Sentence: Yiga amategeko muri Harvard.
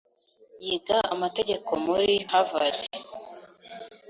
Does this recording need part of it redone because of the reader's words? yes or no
no